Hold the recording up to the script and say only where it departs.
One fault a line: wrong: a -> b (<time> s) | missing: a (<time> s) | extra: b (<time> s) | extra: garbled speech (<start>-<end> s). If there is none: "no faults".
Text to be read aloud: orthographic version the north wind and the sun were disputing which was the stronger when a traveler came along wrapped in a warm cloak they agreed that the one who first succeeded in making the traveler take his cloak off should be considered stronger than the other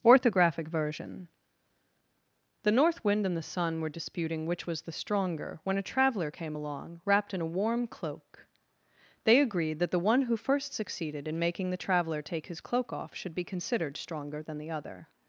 no faults